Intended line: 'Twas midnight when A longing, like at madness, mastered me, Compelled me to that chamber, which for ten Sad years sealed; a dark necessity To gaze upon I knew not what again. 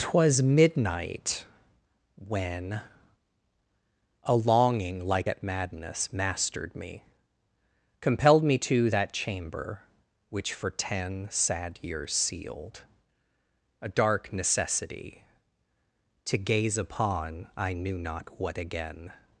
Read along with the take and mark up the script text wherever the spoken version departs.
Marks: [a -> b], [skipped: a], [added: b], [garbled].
'Twas midnight when A longing, like at madness, mastered me, Compelled me to that chamber, which for ten Sad years sealed; a dark necessity To gaze upon I knew not what again.